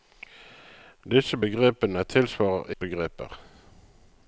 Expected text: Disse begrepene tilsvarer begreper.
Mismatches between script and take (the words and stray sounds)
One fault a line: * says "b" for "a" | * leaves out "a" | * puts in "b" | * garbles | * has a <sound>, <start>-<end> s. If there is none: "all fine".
all fine